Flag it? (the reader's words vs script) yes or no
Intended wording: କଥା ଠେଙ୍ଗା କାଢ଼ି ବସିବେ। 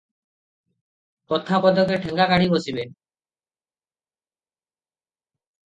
yes